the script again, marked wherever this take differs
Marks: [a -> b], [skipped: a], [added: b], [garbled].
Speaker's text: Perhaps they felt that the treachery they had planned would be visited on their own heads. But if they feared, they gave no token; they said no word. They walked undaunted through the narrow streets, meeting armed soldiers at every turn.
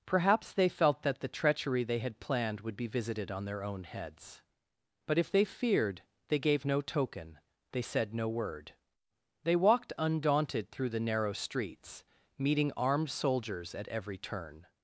Perhaps they felt that the treachery they had planned would be visited on their own heads. But if they feared, they gave no token; they said no word. They walked undaunted through the narrow streets, meeting armed soldiers at every turn.